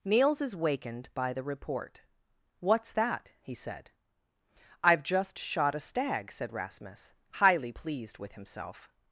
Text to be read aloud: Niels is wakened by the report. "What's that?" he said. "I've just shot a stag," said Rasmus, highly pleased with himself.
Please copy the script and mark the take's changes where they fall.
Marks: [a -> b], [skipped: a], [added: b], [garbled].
Niels is wakened by the report. "What's that?" he said. "I've just shot a stag," said Rasmus, highly pleased with himself.